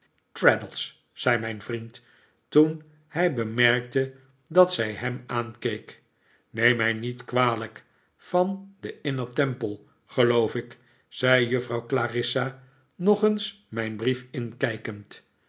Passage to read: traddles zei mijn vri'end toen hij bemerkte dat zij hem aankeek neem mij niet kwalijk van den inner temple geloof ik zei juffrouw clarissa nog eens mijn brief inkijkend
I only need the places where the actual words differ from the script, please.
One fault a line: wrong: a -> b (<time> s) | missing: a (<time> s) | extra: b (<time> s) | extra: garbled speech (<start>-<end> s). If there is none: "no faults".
no faults